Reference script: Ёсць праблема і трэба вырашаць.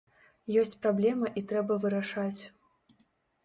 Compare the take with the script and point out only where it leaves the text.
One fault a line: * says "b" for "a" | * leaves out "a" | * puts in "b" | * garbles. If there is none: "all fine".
all fine